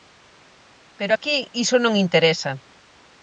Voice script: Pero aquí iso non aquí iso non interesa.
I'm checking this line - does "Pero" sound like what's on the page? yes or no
yes